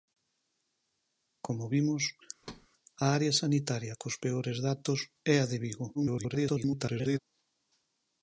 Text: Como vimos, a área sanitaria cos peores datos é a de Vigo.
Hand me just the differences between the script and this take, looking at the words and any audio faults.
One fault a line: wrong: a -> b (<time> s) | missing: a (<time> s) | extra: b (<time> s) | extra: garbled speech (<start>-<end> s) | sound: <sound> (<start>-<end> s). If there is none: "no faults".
sound: thud (2.4-2.7 s)
extra: garbled speech (5.9-7.2 s)